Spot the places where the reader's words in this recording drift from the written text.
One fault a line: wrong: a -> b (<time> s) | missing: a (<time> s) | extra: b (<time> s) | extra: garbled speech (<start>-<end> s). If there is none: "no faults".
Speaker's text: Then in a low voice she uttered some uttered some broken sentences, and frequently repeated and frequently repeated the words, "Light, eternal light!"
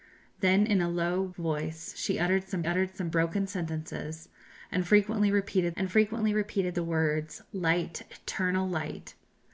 no faults